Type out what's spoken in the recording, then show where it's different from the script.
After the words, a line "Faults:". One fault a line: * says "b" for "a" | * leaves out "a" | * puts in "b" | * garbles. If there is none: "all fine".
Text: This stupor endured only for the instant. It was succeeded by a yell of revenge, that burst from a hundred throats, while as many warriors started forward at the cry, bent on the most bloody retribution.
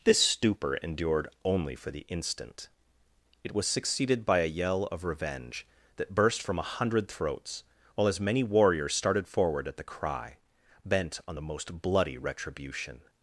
This stupor endured only for the instant. It was succeeded by a yell of revenge, that burst from a hundred throats, while as many warriors started forward at the cry, bent on the most bloody retribution.
Faults:
all fine